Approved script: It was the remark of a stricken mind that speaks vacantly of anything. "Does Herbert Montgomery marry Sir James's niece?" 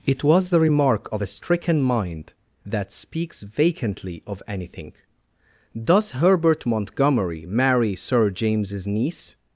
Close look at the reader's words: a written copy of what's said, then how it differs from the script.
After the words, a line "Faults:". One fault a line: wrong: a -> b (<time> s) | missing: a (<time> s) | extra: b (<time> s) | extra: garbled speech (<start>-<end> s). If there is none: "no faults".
It was the remark of a stricken mind that speaks vacantly of anything. "Does Herbert Montgomery marry Sir James's niece?"
Faults:
no faults